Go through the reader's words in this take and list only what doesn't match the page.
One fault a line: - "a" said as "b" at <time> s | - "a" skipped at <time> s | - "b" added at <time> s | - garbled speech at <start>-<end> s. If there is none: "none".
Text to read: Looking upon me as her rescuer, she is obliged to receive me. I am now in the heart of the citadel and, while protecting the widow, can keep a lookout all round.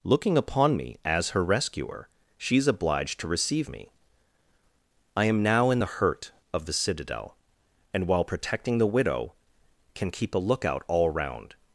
- "heart" said as "hurt" at 5.9 s